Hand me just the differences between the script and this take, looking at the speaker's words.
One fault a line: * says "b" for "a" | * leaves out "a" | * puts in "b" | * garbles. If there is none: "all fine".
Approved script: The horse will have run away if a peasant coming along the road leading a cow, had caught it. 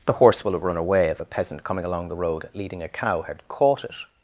all fine